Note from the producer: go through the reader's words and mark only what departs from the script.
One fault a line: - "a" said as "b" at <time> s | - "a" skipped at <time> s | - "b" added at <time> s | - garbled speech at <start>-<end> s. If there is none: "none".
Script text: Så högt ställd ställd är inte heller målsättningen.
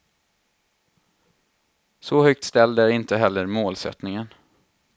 - "ställd" skipped at 2.8 s